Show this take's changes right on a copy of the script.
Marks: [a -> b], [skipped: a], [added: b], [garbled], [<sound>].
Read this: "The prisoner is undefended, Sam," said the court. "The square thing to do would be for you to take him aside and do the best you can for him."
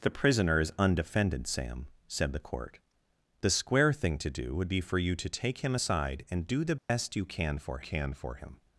"The prisoner is undefended, Sam," said the court. "The square thing to do would be for you to take him aside and do the best [dropout] you can for [added: can for] him."